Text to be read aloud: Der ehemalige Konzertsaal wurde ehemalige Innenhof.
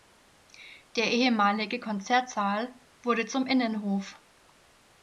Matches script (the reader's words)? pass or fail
fail